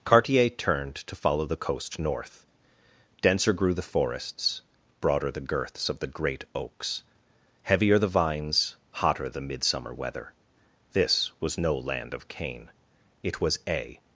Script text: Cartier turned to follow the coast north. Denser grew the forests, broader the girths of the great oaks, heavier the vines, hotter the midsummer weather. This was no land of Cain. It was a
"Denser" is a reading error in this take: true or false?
false